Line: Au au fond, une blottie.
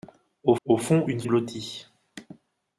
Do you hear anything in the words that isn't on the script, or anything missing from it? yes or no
no